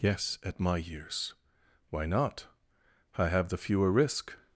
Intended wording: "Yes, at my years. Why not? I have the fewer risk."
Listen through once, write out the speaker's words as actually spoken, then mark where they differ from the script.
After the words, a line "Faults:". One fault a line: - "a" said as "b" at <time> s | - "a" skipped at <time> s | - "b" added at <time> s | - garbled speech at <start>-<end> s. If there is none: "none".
"Yes, at my years. Why not? I have the fewer risk."
Faults:
none